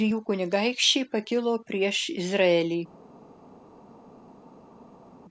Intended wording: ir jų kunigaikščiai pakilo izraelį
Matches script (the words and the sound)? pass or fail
fail